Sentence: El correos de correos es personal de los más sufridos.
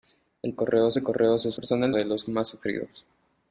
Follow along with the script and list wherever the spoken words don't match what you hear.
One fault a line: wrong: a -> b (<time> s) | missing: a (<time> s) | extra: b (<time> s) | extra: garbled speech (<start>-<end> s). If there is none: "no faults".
no faults